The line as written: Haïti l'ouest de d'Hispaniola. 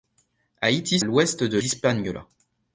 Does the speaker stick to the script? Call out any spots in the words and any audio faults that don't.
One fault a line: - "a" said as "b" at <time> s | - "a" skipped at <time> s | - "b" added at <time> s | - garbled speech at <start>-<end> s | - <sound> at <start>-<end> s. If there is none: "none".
none